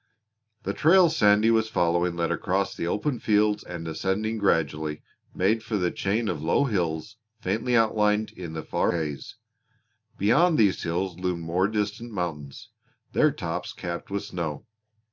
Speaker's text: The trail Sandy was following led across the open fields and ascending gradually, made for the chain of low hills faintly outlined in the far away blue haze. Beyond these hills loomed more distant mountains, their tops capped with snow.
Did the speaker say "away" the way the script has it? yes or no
no